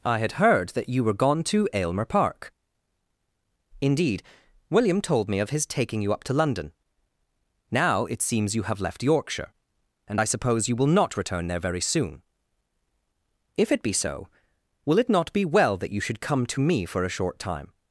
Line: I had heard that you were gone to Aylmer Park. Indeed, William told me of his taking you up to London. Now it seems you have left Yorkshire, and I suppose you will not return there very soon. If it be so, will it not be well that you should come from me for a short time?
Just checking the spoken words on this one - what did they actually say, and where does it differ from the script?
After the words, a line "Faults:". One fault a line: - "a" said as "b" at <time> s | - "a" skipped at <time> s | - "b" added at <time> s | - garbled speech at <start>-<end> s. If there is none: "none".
I had heard that you were gone to Aylmer Park. Indeed, William told me of his taking you up to London. Now it seems you have left Yorkshire, and I suppose you will not return there very soon. If it be so, will it not be well that you should come to me for a short time?
Faults:
- "from" said as "to" at 16.5 s